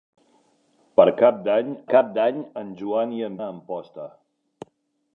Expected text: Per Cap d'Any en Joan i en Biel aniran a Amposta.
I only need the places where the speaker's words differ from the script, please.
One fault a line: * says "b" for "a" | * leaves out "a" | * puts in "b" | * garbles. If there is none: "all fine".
* puts in "Cap d'Any"
* leaves out "Biel aniran"